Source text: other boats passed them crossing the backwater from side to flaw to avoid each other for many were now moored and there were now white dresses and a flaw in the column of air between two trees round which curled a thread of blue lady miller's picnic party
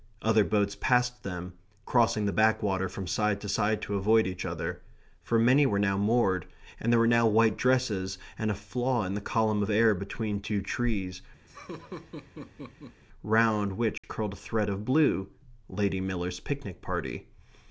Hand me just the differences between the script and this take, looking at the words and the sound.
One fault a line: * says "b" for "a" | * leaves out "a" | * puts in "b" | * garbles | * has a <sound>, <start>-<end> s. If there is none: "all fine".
* says "side" for "flaw"
* has a laugh, 11.5-13.0 s
* has a dropout, 14.0-14.0 s